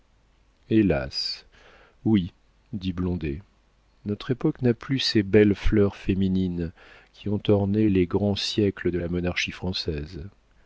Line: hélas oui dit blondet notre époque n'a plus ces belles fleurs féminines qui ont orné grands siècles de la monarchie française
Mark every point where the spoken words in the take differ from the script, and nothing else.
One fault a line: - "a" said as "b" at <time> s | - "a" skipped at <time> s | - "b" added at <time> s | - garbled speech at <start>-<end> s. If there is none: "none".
- "les" added at 7.9 s